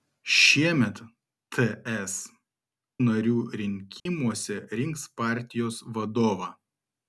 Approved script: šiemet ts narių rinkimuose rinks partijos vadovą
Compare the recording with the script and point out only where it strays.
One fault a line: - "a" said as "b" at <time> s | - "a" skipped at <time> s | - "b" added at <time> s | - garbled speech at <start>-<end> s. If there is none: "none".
none